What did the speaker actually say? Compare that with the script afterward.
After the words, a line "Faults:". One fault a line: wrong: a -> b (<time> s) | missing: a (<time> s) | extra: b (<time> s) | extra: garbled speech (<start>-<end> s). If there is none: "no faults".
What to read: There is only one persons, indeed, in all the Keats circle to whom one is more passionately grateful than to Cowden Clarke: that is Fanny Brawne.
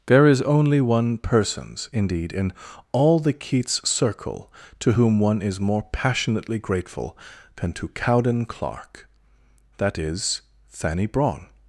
There is only one persons, indeed, in all the Keats circle to whom one is more passionately grateful than to Cowden Clarke: that is Fanny Brawne.
Faults:
no faults